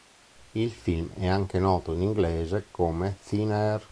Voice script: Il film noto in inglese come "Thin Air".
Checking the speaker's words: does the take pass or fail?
fail